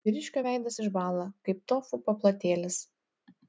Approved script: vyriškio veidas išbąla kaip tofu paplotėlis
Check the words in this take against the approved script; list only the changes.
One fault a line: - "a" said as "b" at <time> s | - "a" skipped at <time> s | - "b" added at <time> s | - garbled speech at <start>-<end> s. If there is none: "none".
none